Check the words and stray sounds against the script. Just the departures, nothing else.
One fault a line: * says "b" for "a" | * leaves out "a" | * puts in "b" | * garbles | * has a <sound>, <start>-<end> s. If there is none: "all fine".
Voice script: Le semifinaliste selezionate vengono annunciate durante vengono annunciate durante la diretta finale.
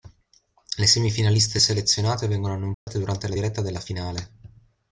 * has a dropout, 2.7-2.9 s
* leaves out "vengono annunciate durante"
* puts in "della"